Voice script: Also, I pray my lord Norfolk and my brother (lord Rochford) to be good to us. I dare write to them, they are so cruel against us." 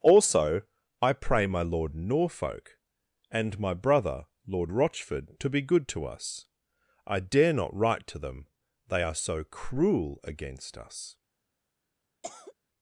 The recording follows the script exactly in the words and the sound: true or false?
false